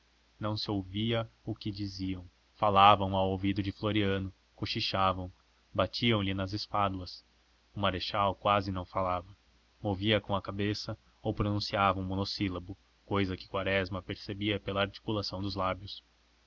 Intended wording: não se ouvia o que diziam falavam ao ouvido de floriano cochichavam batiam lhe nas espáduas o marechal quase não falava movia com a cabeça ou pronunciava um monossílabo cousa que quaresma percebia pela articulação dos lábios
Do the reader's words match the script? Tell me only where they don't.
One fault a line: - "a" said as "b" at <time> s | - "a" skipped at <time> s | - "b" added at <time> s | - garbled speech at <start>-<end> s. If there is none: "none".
none